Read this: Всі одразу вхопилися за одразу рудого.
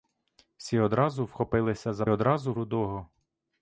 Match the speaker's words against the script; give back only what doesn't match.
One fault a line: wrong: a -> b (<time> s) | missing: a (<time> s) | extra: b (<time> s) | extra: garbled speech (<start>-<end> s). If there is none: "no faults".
no faults